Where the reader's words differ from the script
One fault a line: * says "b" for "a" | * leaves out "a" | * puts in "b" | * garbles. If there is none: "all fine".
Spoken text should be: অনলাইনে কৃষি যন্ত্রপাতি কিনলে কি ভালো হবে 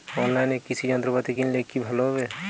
all fine